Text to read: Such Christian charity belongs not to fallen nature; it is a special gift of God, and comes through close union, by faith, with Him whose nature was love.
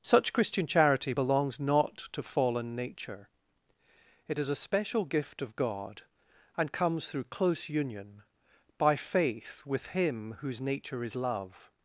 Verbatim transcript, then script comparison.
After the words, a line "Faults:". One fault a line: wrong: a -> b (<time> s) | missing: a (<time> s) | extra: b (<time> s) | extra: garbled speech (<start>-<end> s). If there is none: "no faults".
Such Christian charity belongs not to fallen nature; it is a special gift of God, and comes through close union, by faith, with Him whose nature is love.
Faults:
wrong: was -> is (11.0 s)